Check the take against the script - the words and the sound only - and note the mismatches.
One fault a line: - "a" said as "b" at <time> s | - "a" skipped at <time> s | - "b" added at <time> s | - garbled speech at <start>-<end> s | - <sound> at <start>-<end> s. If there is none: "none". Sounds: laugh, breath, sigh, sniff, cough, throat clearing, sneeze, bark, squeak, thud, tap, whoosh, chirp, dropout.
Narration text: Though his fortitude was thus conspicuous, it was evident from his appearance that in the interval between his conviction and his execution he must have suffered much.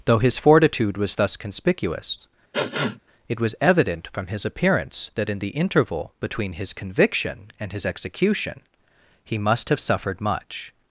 - sniff at 2.5-3.0 s